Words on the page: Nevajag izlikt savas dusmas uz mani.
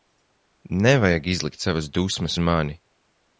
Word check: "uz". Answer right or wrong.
wrong